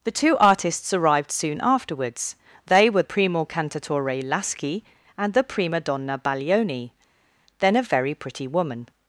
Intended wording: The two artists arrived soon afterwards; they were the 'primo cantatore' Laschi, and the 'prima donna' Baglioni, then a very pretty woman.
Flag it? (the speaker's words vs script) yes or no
yes